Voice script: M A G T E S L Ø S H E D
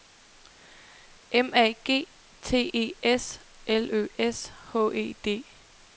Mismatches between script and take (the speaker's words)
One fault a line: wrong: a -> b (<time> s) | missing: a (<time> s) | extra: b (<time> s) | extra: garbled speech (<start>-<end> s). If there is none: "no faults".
no faults